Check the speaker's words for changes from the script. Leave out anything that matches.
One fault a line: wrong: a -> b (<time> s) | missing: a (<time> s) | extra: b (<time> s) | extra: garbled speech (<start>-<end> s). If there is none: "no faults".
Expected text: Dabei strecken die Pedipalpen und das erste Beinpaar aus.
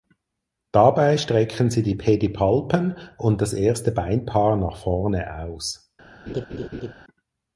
extra: sie (1.7 s)
extra: nach vorne (4.6 s)